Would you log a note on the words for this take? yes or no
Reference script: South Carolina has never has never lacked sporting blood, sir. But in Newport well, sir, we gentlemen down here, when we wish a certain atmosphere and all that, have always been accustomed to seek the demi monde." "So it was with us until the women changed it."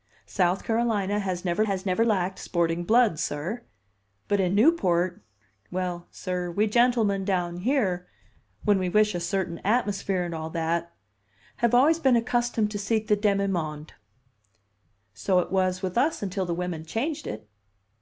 no